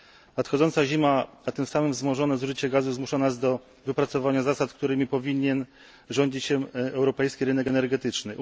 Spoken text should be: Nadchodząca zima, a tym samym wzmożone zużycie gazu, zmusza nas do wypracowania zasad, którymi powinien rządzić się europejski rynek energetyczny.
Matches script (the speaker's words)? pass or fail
pass